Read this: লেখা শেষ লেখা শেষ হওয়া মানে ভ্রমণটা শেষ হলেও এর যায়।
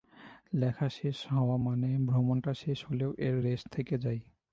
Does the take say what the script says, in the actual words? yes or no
no